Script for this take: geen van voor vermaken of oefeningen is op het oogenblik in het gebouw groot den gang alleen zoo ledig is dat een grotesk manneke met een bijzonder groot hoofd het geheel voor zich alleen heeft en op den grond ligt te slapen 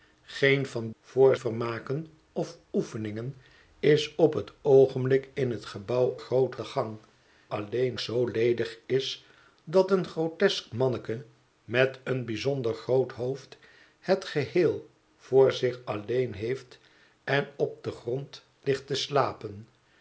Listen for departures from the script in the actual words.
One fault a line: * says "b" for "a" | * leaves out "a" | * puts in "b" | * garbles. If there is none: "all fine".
all fine